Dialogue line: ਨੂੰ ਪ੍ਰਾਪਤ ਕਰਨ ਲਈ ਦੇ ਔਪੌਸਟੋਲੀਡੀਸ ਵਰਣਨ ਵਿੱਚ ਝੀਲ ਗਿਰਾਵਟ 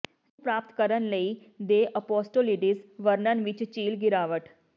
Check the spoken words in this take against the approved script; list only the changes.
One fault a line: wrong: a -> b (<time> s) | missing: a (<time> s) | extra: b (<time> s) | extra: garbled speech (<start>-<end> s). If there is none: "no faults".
no faults